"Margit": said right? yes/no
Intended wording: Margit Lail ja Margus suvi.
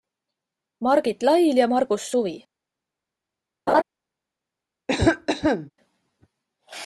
yes